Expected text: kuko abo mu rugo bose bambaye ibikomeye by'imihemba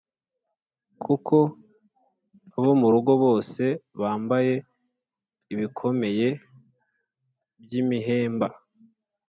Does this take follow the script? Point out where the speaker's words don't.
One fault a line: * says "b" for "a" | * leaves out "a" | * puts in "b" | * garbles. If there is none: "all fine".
all fine